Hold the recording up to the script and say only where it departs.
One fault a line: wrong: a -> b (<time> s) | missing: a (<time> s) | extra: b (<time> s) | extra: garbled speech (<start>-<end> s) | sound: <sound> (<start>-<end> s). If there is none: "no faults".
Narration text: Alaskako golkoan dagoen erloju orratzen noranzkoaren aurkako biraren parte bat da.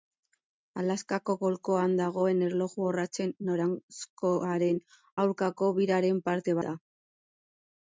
missing: bat (6.6 s)